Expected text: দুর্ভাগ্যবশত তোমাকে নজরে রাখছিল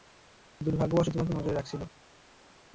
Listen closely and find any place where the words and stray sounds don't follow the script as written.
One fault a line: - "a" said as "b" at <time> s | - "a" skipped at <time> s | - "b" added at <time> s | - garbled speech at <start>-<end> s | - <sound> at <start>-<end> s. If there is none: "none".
none